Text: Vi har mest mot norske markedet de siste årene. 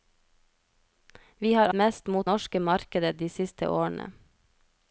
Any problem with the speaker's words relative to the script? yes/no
no